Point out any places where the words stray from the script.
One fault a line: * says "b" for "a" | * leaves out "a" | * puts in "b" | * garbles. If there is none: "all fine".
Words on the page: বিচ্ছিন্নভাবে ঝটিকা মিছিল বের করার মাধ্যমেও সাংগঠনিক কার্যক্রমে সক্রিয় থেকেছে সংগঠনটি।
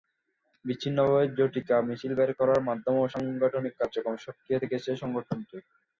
all fine